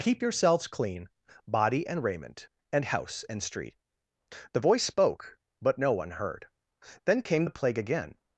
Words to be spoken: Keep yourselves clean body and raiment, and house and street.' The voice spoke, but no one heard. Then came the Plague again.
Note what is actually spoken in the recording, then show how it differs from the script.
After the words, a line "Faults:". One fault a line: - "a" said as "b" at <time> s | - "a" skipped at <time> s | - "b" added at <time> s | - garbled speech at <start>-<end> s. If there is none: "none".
Keep yourselves clean body and raiment, and house and street.' The voice spoke, but no one heard. Then came the Plague again.
Faults:
none